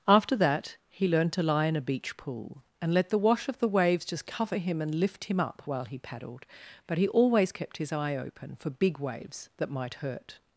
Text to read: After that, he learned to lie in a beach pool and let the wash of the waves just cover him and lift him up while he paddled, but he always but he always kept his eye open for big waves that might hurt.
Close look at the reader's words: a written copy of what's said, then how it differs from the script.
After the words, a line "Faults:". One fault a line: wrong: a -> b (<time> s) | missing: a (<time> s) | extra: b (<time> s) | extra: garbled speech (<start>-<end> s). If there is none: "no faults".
After that, he learned to lie in a beach pool and let the wash of the waves just cover him and lift him up while he paddled, but he always kept his eye open for big waves that might hurt.
Faults:
missing: but he always (7.5 s)